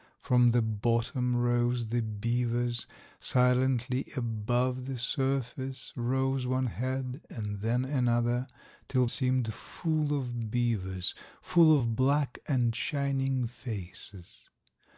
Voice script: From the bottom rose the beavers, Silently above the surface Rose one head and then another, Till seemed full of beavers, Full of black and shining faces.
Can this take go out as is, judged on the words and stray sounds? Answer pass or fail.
pass